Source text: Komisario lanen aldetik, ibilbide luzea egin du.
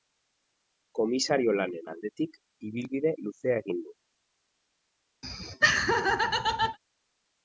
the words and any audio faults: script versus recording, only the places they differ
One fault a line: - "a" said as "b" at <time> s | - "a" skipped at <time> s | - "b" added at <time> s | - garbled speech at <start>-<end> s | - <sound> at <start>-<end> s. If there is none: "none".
- laugh at 5.2-6.8 s